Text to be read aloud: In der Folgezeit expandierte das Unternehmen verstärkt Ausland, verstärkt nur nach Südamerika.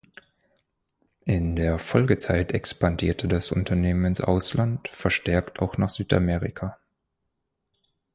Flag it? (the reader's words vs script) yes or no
yes